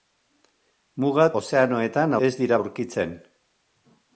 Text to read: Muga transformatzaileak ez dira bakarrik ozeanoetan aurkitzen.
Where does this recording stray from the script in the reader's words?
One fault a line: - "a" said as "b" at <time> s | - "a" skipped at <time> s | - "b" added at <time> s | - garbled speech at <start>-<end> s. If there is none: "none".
- "transformatzaileak" said as "ozeanoetan" at 1.4 s
- "bakarrik ozeanoetan" skipped at 2.6 s